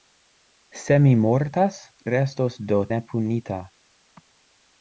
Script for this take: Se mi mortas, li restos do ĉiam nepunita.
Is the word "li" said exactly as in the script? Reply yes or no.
no